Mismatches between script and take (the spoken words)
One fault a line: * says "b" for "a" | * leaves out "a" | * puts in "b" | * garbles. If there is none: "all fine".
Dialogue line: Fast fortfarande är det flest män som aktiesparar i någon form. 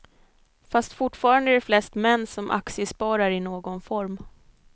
all fine